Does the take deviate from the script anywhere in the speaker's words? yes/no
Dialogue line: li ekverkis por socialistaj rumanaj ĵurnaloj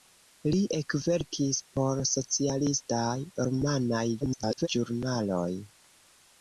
yes